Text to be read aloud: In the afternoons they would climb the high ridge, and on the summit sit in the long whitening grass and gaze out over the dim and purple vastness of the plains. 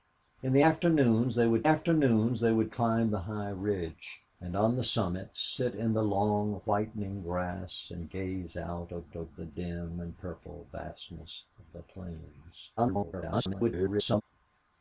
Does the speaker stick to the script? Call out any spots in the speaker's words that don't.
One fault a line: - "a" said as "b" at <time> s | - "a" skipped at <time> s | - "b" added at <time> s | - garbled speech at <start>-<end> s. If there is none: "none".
- "afternoons they would" added at 1.6 s
- "over" added at 9.1 s
- garbled speech at 12.8-14.2 s